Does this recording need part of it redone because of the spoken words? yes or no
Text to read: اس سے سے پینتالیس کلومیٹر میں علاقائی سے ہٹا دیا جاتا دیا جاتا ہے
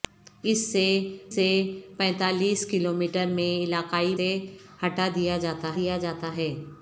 no